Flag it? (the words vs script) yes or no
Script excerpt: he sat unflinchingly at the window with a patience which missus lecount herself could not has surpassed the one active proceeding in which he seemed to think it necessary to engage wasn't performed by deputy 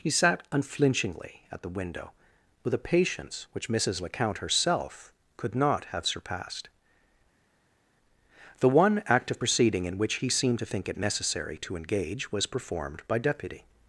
yes